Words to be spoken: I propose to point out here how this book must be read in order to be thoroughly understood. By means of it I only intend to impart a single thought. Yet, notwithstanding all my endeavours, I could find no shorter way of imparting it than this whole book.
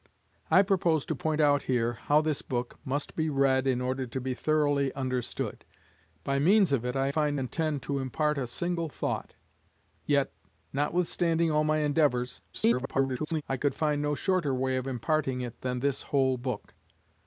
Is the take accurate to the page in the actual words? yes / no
no